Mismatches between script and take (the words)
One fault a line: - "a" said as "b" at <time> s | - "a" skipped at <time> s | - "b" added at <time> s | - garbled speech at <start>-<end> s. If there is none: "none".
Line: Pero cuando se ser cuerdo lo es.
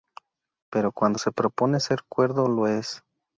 - "propone" added at 1.3 s